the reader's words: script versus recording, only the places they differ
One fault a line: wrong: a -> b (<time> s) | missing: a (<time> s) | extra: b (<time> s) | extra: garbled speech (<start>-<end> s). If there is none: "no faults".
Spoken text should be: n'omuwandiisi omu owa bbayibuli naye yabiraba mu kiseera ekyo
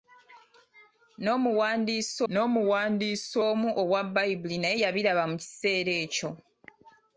extra: n'omuwandiisi (2.3 s)